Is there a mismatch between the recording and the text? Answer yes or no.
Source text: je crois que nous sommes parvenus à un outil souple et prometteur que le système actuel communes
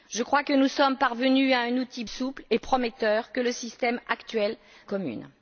no